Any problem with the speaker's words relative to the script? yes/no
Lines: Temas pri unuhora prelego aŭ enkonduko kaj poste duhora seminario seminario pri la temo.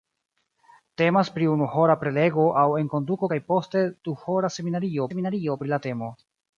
no